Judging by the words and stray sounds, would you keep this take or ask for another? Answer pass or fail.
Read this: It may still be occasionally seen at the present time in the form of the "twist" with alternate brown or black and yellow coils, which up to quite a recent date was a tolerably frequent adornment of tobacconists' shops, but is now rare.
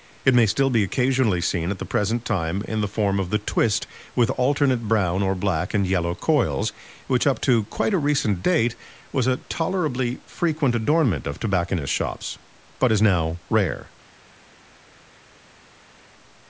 pass